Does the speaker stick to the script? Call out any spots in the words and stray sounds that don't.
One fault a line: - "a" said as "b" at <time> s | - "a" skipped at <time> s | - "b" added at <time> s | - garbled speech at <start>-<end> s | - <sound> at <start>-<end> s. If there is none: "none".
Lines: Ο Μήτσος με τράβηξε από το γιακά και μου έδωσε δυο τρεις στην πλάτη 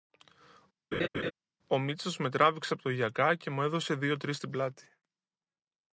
- laugh at 0.9-1.3 s